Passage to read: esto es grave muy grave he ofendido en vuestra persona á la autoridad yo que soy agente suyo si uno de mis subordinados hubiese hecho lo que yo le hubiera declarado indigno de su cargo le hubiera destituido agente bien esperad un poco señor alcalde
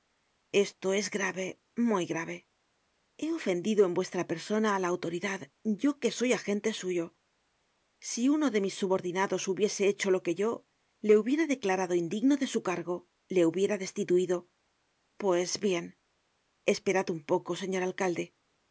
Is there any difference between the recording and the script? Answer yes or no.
yes